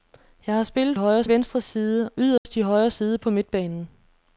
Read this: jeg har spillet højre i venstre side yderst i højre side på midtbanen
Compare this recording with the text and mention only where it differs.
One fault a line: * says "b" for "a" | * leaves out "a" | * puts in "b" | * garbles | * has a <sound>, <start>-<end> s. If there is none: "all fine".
* has a dropout, 2.4-2.5 s